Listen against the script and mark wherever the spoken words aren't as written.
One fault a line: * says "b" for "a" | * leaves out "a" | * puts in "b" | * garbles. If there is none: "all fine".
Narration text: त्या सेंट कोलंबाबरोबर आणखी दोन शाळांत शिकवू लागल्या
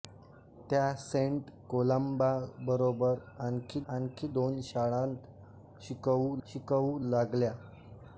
* puts in "आणखी"
* puts in "शिकवू"